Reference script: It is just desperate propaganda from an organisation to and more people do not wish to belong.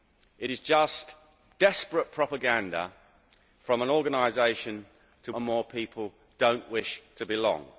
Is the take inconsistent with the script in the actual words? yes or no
no